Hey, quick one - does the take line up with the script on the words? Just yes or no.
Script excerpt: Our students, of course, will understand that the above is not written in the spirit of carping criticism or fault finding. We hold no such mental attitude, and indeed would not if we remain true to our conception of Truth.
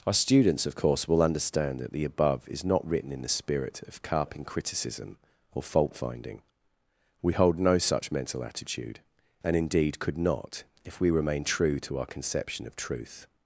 no